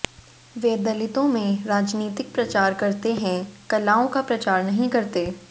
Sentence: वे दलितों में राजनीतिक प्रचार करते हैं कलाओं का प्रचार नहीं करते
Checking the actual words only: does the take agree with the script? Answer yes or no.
yes